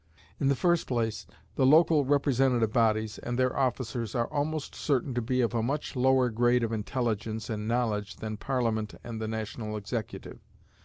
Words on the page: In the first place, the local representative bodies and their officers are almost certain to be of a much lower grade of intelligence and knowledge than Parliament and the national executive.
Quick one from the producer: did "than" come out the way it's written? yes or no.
yes